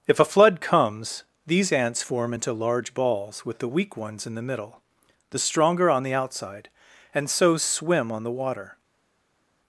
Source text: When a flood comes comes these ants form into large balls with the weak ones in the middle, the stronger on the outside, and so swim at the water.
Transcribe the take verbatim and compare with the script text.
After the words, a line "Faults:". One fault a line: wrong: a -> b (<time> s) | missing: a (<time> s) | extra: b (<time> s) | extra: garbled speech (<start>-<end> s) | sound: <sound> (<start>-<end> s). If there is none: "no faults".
If a flood comes these ants form into large balls with the weak ones in the middle, the stronger on the outside, and so swim on the water.
Faults:
wrong: When -> If (0.1 s)
missing: comes (1.2 s)
wrong: at -> on (8.1 s)